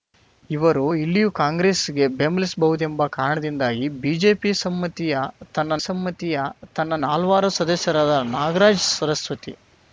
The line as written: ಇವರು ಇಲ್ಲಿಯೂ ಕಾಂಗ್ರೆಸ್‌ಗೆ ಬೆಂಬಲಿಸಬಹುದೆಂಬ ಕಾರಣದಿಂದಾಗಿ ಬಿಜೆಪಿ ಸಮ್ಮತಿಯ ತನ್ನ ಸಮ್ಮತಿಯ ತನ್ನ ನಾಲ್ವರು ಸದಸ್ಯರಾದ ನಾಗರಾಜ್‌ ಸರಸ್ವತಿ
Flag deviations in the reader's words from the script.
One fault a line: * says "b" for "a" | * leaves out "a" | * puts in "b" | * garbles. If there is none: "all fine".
all fine